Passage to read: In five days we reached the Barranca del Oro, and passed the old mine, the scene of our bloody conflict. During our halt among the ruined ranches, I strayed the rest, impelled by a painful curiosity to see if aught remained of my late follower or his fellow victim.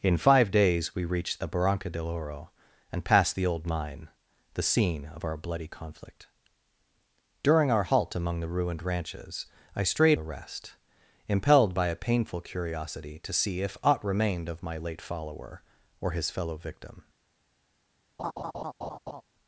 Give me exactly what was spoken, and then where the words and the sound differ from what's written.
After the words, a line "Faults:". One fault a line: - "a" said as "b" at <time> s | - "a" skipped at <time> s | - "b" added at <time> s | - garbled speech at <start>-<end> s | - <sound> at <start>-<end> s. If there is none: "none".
In five days we reached the Barranca del Oro, and passed the old mine, the scene of our bloody conflict. During our halt among the ruined ranches, I strayed the rest, impelled by a painful curiosity to see if aught remained of my late follower or his fellow victim.
Faults:
- laugh at 18.2-19.2 s